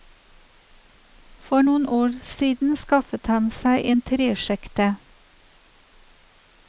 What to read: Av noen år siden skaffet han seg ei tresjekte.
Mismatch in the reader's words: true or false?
true